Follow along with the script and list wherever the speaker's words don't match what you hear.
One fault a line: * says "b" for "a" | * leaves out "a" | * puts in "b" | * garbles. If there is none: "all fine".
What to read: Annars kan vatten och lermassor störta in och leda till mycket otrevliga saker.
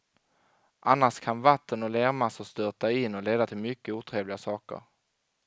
all fine